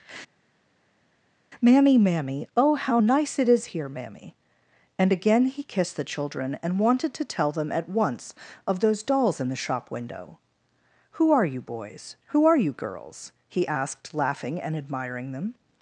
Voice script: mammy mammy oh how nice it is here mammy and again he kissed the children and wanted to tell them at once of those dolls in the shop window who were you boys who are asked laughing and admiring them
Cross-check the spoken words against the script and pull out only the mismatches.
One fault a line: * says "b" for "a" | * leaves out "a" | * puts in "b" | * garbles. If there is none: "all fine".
* says "are" for "were"
* puts in "you girls he"